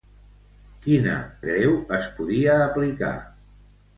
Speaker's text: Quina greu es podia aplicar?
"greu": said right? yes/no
yes